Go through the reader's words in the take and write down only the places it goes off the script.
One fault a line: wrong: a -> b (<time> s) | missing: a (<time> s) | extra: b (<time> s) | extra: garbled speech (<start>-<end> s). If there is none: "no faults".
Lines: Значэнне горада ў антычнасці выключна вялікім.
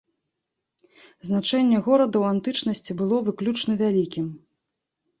extra: было (3.0 s)